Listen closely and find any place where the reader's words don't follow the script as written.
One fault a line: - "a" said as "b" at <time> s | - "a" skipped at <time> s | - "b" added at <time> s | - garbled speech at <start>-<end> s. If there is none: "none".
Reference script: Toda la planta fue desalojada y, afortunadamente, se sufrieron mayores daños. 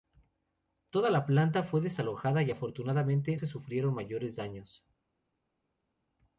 none